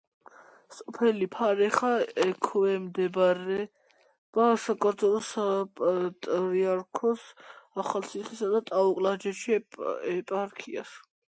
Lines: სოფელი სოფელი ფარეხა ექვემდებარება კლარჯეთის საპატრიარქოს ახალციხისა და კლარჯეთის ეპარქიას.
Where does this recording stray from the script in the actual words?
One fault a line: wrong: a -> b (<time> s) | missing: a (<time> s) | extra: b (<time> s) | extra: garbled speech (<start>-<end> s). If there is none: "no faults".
missing: სოფელი (1.2 s)
wrong: კლარჯეთის -> საქართველოს (4.6 s)
extra: ტაო (8.7 s)